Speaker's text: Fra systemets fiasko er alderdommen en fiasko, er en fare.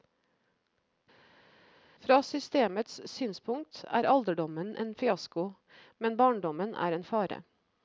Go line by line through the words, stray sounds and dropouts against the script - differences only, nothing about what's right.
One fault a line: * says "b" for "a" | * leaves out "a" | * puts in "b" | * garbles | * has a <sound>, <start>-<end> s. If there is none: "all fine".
* says "synspunkt" for "fiasko"
* puts in "men barndommen"